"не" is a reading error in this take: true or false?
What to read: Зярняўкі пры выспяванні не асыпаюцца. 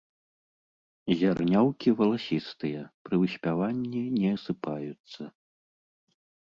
false